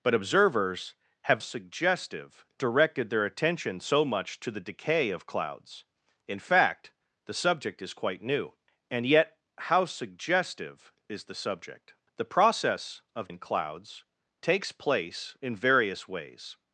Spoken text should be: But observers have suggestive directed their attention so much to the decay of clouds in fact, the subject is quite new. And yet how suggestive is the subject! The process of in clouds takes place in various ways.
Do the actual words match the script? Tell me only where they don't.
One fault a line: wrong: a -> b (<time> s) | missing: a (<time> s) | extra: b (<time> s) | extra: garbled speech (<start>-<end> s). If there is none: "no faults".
no faults